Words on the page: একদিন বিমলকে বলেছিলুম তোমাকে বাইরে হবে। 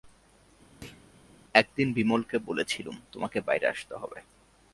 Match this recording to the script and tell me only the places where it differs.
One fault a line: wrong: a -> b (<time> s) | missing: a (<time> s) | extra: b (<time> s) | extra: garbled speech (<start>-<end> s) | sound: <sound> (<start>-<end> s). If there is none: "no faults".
sound: thud (0.8-1.1 s)
extra: আসতে (3.7 s)